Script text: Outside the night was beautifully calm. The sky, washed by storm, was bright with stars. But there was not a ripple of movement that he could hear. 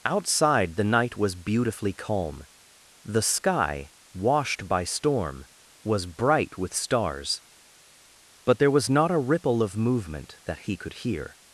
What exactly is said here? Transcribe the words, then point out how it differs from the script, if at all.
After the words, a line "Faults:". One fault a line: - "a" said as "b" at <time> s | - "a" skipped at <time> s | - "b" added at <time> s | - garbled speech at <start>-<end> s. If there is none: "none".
Outside the night was beautifully calm. The sky, washed by storm, was bright with stars. But there was not a ripple of movement that he could hear.
Faults:
none